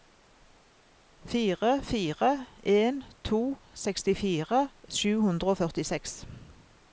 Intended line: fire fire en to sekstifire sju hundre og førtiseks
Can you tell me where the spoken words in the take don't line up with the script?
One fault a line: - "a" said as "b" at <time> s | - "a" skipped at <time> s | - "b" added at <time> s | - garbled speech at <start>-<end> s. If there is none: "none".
none